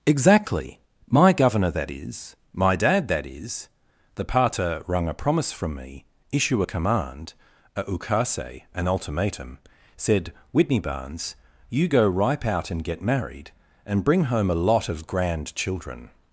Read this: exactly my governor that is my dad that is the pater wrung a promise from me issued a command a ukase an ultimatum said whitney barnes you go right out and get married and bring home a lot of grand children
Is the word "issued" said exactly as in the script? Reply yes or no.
no